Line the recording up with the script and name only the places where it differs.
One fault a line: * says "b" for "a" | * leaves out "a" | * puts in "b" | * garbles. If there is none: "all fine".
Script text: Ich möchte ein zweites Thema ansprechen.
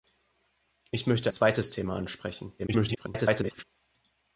* leaves out "ein"
* garbles